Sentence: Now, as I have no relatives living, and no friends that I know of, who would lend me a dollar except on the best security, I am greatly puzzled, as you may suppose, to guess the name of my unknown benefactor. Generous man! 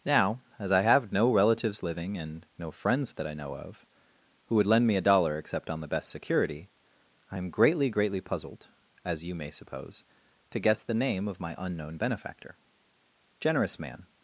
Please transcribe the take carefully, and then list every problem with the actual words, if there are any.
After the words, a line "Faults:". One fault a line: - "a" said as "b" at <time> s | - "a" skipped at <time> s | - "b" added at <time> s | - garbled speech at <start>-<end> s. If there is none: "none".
Now, as I have no relatives living, and no friends that I know of, who would lend me a dollar except on the best security, I am greatly greatly puzzled, as you may suppose, to guess the name of my unknown benefactor. Generous man!
Faults:
- "greatly" added at 7.9 s